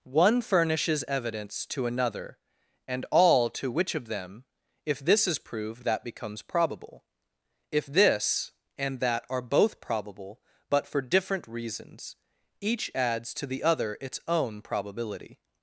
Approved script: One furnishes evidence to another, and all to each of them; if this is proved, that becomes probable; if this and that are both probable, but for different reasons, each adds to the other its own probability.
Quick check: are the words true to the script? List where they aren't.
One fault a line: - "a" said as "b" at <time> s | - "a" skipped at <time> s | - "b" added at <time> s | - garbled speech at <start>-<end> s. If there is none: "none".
- "each" said as "which" at 3.7 s